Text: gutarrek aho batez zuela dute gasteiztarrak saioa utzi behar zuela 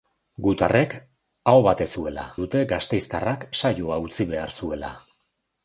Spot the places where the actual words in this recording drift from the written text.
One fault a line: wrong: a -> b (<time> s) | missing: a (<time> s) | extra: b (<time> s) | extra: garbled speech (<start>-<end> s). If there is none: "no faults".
no faults